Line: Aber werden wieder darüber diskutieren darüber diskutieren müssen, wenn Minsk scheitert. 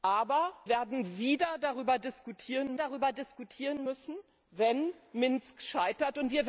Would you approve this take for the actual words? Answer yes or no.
yes